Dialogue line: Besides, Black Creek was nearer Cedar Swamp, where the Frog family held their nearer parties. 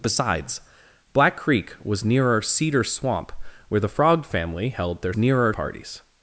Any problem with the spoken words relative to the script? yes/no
no